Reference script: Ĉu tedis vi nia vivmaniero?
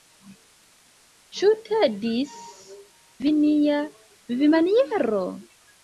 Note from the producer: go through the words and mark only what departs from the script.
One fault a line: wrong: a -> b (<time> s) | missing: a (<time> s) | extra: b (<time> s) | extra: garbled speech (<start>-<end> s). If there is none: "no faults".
no faults